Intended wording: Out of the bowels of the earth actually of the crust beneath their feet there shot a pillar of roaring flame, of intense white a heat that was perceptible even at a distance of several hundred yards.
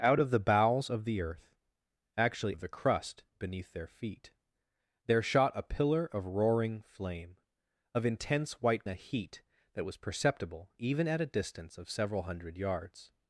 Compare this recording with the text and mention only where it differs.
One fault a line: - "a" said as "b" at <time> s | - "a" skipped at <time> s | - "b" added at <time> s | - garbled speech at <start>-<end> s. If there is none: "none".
none